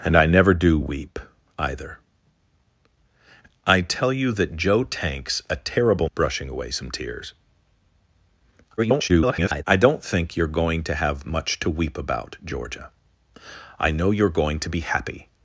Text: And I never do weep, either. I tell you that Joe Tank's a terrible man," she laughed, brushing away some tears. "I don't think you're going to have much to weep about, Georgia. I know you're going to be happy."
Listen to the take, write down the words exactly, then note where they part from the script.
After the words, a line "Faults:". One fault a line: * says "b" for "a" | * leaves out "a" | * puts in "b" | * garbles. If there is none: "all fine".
And I never do weep, either. I tell you that Joe Tank's a terrible brushing away some tears. [garbled] "I don't think you're going to have much to weep about, Georgia. I know you're going to be happy."
Faults:
* leaves out "man she laughed"
* garbles